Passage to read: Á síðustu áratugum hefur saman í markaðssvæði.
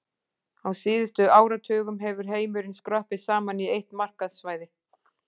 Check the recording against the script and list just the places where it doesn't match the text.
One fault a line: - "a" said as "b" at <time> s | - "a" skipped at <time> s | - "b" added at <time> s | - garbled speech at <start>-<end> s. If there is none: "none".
- "heimurinn skroppið" added at 2.4 s
- "eitt" added at 3.8 s